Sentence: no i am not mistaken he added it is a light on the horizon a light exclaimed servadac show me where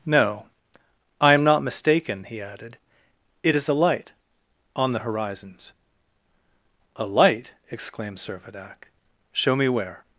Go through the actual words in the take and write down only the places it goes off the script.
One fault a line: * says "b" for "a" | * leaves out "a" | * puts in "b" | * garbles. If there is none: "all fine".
* says "horizons" for "horizon"